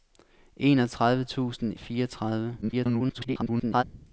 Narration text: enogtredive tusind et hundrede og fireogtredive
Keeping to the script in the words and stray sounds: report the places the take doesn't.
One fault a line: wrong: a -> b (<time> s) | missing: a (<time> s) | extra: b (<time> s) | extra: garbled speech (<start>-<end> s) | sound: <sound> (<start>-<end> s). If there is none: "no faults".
missing: et hundrede (1.7 s)
extra: garbled speech (2.6-3.8 s)